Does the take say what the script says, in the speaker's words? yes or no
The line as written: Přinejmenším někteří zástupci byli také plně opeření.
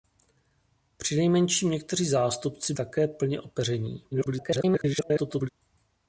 no